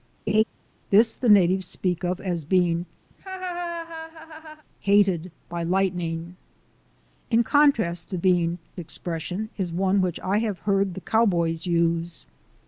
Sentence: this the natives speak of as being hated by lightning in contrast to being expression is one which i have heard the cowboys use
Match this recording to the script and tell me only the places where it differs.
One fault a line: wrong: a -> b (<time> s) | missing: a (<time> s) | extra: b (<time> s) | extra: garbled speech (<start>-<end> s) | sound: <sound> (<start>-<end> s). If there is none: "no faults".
sound: laugh (0.3-0.4 s)
sound: laugh (3.1-4.6 s)